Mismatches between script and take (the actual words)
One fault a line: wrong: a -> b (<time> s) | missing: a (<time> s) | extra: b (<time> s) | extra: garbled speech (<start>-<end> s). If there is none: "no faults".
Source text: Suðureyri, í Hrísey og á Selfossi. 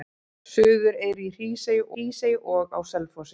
extra: Hrísey (1.9 s)